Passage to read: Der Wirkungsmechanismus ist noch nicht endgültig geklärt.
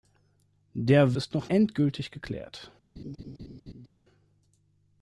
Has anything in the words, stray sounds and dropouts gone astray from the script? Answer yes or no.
yes